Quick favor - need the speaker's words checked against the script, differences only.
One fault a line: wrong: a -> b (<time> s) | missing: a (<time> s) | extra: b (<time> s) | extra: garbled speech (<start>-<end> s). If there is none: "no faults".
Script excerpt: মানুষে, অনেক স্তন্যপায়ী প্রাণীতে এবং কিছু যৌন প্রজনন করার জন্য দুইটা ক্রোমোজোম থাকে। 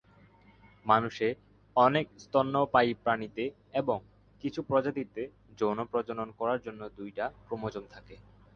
extra: প্রজাতিতে (4.6 s)